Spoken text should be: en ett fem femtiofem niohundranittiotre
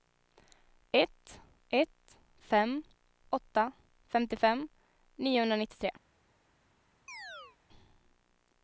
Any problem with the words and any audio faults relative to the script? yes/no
yes